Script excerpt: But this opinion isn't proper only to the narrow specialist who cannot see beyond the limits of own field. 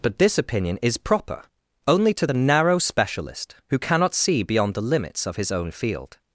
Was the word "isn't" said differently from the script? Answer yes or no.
yes